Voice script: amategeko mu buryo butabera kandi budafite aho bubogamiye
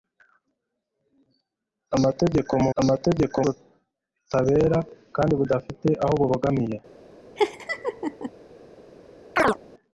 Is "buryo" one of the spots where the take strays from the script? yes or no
yes